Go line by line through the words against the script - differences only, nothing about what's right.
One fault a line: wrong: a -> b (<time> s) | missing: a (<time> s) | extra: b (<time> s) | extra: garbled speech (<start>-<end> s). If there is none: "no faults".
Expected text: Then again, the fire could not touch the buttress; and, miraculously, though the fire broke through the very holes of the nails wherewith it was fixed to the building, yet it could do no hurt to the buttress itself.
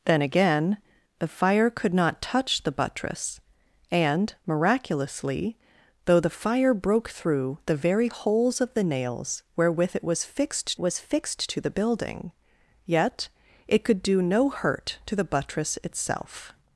extra: was fixed (10.8 s)